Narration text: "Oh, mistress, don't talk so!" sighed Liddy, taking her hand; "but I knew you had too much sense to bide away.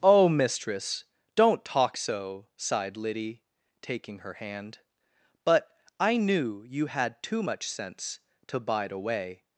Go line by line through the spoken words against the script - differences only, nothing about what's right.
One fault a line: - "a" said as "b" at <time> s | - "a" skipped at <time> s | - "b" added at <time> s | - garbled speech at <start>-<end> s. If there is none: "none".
none